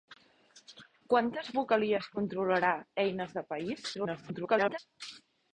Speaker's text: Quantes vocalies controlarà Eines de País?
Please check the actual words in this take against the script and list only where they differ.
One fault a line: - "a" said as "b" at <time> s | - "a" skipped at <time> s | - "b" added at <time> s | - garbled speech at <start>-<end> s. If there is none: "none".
- garbled speech at 3.9-4.8 s